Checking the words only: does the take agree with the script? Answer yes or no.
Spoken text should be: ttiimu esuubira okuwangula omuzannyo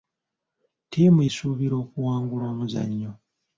yes